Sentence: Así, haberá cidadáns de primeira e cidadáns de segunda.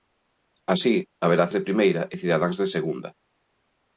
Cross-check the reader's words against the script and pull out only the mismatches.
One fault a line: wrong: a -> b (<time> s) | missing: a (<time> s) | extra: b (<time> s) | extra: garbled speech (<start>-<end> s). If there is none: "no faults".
missing: cidadáns (1.4 s)